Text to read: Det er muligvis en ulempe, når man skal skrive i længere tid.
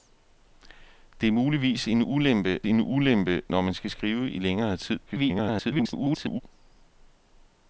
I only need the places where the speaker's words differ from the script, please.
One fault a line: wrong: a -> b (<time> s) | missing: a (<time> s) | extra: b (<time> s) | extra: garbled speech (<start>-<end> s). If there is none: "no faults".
extra: en ulempe (2.6 s)
extra: garbled speech (5.1-6.4 s)